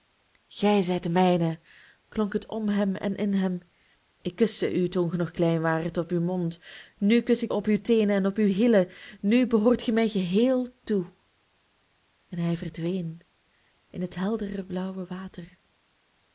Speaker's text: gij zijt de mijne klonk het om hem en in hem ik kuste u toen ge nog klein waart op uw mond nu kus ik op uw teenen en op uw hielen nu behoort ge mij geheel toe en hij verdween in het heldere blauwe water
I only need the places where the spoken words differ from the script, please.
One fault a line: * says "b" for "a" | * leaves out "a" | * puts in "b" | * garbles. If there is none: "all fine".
all fine